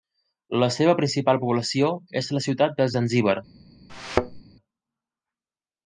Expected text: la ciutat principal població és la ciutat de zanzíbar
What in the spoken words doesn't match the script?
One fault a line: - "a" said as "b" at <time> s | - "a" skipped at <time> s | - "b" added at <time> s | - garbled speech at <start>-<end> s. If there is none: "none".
- "ciutat" said as "seva" at 0.8 s